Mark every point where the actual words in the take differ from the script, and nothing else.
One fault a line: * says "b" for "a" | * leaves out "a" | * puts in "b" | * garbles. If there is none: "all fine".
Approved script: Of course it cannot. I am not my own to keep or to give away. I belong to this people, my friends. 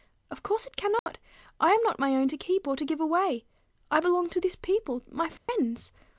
all fine